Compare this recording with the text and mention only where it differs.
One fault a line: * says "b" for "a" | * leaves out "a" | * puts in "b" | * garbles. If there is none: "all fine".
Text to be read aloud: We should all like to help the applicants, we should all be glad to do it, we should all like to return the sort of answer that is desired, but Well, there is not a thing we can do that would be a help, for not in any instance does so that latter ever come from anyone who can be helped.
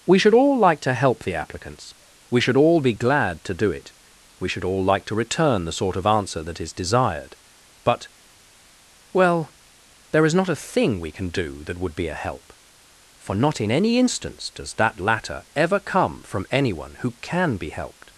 * leaves out "so"